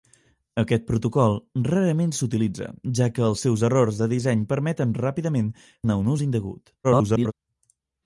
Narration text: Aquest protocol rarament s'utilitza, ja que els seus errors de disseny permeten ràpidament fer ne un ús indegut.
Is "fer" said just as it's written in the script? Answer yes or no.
no